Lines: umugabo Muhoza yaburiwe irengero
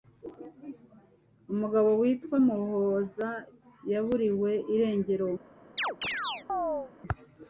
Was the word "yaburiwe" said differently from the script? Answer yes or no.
no